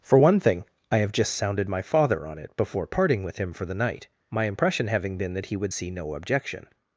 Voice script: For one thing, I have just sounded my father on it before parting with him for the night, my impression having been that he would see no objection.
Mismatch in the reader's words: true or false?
false